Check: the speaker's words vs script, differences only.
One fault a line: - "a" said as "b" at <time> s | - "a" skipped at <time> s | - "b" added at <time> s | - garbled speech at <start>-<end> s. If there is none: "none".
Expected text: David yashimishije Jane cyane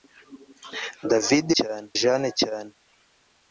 - "yashimishije" said as "cyane" at 1.6 s